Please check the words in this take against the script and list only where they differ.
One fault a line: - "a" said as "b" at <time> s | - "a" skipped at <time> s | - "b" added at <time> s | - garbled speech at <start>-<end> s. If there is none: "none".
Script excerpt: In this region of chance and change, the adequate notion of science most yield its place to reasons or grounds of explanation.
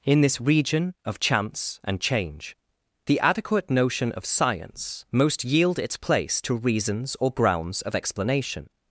none